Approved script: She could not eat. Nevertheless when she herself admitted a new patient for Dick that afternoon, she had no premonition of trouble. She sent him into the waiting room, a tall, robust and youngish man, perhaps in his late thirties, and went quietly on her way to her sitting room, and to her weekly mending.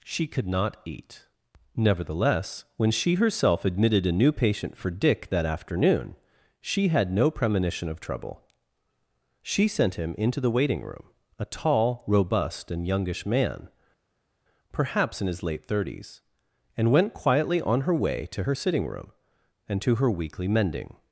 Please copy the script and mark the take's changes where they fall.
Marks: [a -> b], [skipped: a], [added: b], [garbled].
She could not eat. Nevertheless when she herself admitted a new patient for Dick that afternoon, she had no premonition of trouble. She sent him into the waiting room, a tall, robust and youngish man, perhaps in his late thirties, and went quietly on her way to her sitting room, and to her weekly mending.